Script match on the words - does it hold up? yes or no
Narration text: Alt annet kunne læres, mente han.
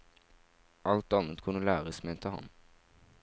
yes